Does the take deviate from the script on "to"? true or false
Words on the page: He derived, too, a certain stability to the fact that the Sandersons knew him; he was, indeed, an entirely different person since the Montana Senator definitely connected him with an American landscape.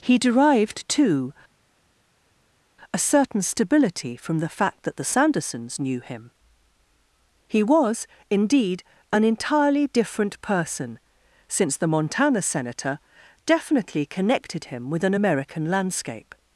true